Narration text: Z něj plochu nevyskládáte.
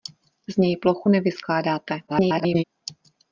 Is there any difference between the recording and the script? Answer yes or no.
yes